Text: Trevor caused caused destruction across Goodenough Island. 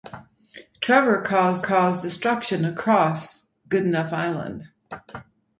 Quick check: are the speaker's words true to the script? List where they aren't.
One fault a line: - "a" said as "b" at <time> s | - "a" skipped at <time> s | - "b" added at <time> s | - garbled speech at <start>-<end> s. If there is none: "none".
none